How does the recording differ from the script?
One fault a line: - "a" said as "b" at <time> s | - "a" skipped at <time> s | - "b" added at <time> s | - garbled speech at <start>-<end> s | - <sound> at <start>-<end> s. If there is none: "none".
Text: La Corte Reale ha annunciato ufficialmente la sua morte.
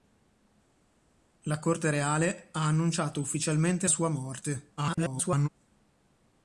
- "la" skipped at 3.9 s
- garbled speech at 4.8-5.5 s